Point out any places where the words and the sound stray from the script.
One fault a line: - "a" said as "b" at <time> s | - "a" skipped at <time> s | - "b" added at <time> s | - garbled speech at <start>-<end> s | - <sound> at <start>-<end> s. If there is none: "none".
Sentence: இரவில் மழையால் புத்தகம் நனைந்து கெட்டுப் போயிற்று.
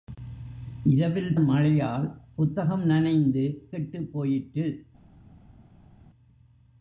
none